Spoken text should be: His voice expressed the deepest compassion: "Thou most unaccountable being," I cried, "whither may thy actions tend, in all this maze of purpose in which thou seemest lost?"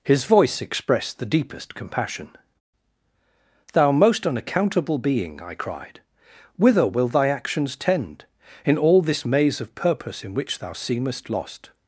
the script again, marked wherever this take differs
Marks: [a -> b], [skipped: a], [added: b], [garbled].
His voice expressed the deepest compassion: "Thou most unaccountable being," I cried, "whither [may -> will] thy actions tend, in all this maze of purpose in which thou seemest lost?"